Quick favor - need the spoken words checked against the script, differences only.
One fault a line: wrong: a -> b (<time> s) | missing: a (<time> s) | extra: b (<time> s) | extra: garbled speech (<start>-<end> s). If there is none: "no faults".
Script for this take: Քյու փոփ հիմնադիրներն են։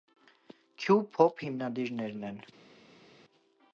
no faults